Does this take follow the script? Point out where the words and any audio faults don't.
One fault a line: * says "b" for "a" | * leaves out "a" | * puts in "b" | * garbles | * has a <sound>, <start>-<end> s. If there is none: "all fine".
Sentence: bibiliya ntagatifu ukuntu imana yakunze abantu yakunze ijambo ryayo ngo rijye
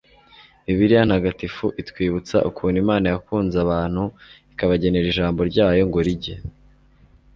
* puts in "itwibutsa"
* says "ikabagenera" for "yakunze"